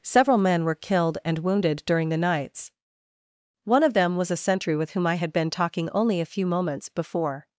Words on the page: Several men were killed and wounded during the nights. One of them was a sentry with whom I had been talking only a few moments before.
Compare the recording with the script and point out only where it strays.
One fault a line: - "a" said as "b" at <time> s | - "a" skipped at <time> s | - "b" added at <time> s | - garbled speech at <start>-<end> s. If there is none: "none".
none